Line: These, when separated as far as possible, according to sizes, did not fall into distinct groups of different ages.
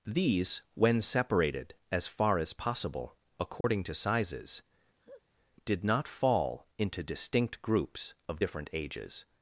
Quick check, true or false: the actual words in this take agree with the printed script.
true